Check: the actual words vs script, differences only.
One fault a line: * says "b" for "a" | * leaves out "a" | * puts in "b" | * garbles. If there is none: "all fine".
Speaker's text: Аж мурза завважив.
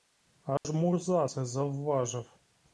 * puts in "це"